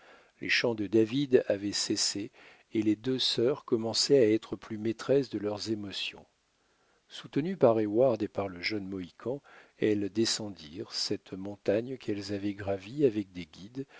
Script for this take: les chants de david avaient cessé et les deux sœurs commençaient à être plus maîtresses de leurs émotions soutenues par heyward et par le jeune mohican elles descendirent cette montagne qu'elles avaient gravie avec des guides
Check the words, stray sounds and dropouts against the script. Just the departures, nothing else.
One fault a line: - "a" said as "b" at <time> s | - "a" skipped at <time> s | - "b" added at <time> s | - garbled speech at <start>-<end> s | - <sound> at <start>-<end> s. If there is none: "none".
none